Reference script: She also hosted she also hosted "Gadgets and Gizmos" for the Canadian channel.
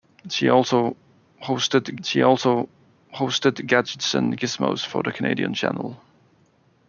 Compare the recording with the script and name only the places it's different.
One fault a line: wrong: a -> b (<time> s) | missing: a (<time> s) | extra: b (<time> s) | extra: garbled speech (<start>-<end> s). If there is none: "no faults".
no faults